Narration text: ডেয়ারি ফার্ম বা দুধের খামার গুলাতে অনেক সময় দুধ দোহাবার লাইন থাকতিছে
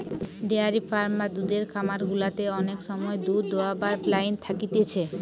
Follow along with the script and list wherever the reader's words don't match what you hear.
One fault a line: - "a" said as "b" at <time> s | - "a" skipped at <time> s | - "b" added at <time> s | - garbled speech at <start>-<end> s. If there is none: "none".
none